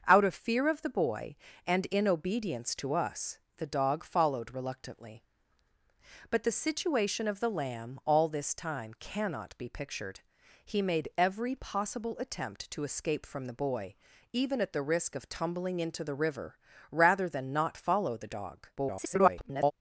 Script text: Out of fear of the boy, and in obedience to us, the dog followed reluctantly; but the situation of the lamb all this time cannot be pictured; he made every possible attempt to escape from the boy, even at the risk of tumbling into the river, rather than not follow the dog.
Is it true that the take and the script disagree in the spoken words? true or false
true